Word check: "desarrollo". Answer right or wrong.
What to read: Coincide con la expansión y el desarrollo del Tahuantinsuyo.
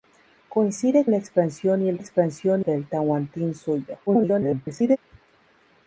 wrong